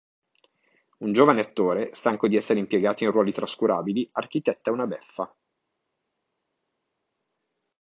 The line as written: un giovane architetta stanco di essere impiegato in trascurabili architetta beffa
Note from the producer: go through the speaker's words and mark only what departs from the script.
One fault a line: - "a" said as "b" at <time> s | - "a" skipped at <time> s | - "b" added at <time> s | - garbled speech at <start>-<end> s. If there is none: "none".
- "architetta" said as "attore" at 1.4 s
- "ruoli" added at 3.1 s
- "una" added at 4.7 s